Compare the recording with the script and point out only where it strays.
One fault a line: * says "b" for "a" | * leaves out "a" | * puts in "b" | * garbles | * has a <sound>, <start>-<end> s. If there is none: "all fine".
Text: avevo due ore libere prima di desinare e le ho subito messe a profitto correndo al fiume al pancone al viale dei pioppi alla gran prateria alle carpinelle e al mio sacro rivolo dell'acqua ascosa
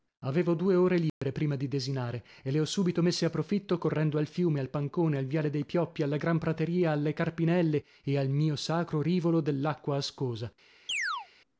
* has a dropout, 1.1-1.2 s
* has a chirp, 10.9-11.3 s